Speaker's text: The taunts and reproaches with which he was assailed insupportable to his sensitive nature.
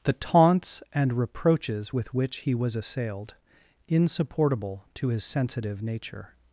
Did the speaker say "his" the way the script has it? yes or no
yes